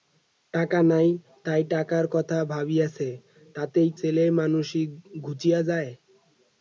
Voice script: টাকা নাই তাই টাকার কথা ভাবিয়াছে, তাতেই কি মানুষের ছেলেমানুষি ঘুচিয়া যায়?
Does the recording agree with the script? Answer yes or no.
no